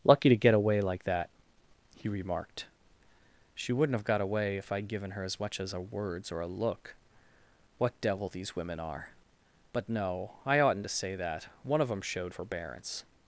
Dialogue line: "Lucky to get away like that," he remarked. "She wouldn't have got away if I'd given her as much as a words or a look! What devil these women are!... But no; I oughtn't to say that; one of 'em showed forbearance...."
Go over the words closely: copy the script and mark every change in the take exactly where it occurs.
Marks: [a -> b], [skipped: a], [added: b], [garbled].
"Lucky to get away like that," he remarked. "She wouldn't have got away if I'd given her as much as a words or a look! What devil these women are!... But no; I oughtn't to say that; one of 'em showed forbearance...."